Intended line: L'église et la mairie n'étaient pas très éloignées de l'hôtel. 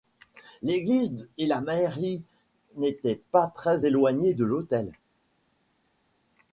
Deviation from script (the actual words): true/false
false